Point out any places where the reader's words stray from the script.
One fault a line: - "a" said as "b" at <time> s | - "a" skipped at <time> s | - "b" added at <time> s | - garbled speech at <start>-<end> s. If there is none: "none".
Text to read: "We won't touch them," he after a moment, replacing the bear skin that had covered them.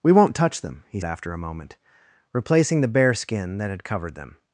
none